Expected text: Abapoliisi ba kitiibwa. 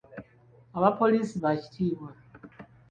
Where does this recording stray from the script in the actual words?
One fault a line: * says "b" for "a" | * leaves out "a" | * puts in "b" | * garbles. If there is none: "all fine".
all fine